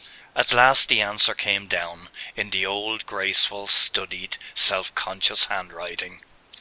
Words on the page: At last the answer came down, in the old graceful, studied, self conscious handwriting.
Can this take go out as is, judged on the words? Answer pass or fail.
pass